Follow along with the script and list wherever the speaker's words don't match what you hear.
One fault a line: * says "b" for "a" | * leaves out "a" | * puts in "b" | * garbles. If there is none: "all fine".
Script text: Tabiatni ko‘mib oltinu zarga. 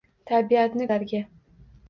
* leaves out "ko‘mib oltinu"